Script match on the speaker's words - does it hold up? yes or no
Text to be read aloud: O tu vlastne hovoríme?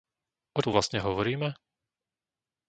yes